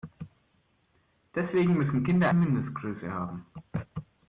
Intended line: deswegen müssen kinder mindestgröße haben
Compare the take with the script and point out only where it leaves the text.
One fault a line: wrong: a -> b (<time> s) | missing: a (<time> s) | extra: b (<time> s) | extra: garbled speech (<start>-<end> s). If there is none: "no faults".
no faults